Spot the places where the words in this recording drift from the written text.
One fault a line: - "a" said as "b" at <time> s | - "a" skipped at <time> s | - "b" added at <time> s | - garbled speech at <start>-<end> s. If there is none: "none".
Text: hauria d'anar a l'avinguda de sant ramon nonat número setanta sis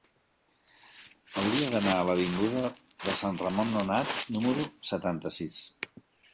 none